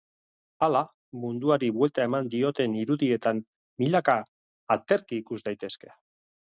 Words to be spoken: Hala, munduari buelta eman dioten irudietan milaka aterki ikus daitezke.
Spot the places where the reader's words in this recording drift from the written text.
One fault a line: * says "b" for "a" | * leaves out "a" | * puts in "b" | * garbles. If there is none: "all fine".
all fine